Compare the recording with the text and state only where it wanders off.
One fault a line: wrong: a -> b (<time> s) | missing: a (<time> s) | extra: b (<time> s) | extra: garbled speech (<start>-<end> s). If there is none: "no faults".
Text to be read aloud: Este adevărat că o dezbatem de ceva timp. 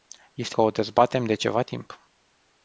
missing: adevărat (0.6 s)